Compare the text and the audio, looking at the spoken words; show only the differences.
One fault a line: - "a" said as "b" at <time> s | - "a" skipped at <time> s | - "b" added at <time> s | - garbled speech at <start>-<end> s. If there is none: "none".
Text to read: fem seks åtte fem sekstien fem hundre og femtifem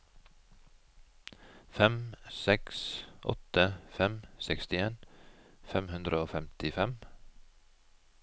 none